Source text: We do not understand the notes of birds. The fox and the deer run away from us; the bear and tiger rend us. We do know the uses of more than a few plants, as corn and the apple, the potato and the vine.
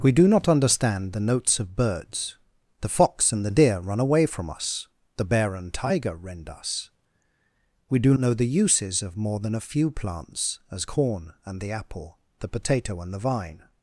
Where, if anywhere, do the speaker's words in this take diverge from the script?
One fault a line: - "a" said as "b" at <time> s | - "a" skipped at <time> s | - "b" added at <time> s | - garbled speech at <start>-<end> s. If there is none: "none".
none